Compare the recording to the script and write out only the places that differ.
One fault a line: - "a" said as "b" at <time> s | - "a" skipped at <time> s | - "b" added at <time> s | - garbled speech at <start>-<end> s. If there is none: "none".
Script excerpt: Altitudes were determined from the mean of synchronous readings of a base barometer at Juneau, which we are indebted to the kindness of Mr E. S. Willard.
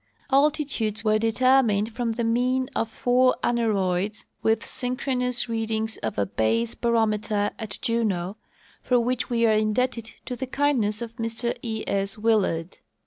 - "four aneroids with" added at 2.9 s
- "for" added at 8.8 s